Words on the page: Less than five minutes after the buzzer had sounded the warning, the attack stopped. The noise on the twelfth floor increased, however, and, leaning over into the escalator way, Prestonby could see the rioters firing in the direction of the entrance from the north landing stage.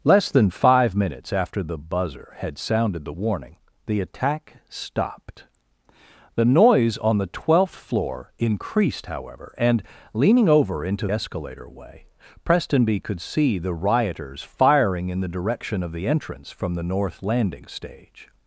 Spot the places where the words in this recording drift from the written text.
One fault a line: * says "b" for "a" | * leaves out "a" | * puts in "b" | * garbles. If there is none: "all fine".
* leaves out "the"